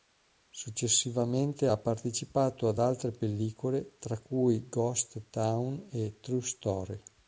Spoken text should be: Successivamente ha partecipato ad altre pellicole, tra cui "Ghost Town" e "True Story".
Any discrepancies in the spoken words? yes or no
no